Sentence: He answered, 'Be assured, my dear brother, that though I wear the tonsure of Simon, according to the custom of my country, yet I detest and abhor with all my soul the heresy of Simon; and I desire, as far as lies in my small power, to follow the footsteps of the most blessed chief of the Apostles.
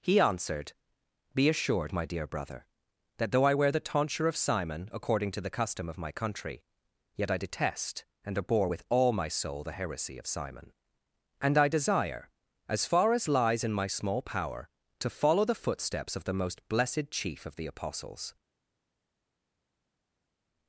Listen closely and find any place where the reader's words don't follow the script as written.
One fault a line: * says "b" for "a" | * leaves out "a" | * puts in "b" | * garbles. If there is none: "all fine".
all fine